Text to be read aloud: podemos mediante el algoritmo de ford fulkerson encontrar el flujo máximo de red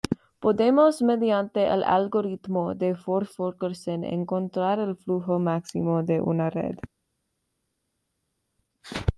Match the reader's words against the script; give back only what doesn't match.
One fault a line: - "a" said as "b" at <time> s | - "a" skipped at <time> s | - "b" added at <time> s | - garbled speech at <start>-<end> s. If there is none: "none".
- "una" added at 6.2 s